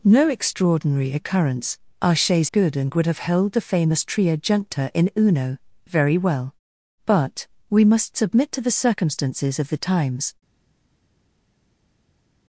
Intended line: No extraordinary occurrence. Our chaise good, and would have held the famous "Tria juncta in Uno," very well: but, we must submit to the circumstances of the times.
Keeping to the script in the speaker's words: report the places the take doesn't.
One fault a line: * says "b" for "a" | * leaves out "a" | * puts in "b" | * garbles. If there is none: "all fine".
all fine